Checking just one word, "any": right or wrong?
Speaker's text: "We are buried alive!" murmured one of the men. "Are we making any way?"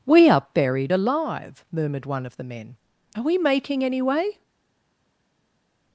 right